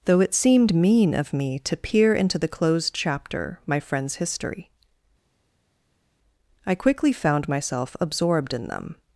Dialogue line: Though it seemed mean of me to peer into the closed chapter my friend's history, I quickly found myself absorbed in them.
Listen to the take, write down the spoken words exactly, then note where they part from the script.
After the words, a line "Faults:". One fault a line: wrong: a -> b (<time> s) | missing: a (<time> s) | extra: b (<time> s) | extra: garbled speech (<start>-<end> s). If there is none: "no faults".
Though it seemed mean of me to peer into the closed chapter my friend's history, I quickly found myself absorbed in them.
Faults:
no faults